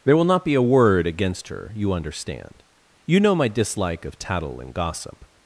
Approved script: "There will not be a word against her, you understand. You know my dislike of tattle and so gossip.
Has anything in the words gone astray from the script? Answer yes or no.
yes